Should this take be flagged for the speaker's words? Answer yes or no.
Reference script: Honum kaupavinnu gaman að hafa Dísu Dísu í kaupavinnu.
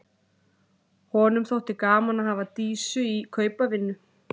yes